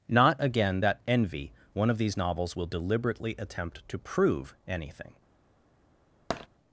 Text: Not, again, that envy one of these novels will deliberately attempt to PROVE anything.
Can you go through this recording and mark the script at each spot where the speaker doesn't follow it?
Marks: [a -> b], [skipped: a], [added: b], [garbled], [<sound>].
Not, again, that envy one of these novels will deliberately attempt to PROVE anything. [tap]